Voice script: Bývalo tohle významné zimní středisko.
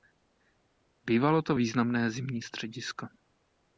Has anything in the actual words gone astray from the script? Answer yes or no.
yes